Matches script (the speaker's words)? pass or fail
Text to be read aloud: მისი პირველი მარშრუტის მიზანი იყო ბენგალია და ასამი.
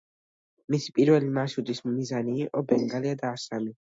pass